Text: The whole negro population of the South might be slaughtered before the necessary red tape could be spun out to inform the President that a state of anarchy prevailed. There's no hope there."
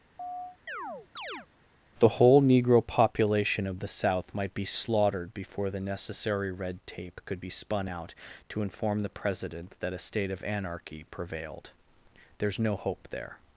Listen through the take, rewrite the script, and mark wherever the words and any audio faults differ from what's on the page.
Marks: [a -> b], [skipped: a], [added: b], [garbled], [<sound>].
[chirp] The whole negro population of the South might be slaughtered before the necessary red tape could be spun out to inform the President that a state of anarchy prevailed. There's no hope there."